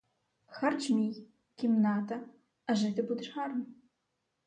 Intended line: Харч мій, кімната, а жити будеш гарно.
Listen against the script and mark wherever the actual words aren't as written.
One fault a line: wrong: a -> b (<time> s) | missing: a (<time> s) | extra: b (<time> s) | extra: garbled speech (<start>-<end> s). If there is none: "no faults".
no faults